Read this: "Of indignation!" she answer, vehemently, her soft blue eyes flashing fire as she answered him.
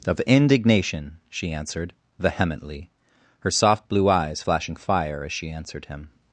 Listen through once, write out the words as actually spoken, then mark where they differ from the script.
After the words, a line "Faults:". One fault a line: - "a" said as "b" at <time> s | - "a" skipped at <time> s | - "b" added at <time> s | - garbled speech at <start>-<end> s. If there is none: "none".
"Of indignation!" she answered, vehemently, her soft blue eyes flashing fire as she answered him.
Faults:
- "answer" said as "answered" at 1.5 s